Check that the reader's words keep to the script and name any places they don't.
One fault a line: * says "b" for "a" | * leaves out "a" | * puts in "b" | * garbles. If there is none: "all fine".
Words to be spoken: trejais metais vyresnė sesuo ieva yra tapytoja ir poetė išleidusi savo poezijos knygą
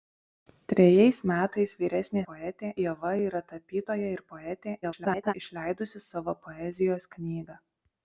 * says "poetė" for "sesuo"
* garbles